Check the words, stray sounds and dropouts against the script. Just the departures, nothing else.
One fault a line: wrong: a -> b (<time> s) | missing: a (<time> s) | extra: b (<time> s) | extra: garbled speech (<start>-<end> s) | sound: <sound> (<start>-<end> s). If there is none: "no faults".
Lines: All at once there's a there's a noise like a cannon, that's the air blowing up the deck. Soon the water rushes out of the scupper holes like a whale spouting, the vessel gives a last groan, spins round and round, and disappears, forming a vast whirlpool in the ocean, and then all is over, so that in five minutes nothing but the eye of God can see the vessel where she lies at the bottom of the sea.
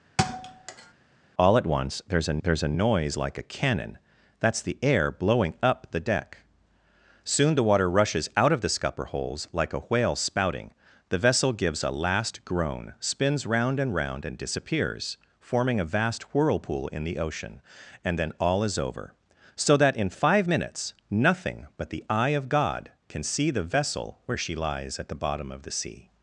sound: thud (0.2-0.9 s)